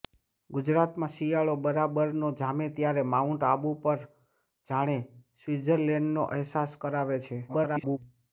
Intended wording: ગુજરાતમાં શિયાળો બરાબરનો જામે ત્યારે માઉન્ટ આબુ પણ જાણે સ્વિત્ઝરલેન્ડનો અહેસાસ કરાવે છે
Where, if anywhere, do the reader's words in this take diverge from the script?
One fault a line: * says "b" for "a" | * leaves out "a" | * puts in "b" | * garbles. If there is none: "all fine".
* garbles